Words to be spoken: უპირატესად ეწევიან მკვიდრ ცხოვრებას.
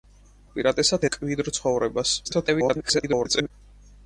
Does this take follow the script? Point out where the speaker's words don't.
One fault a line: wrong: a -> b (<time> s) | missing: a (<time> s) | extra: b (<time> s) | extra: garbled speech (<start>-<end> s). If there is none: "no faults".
missing: ეწევიან (1.1 s)
extra: garbled speech (2.2-3.5 s)